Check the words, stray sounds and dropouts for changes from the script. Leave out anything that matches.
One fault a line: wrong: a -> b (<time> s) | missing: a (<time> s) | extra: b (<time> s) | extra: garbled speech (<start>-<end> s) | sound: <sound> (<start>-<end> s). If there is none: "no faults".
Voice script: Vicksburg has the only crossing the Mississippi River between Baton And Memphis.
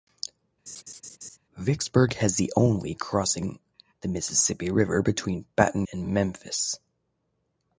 sound: laugh (0.7-1.4 s)